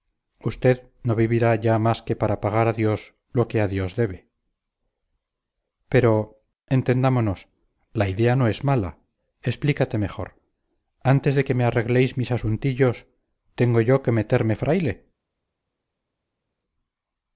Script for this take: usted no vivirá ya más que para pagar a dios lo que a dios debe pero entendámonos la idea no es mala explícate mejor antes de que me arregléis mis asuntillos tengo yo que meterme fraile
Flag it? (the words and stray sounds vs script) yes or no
no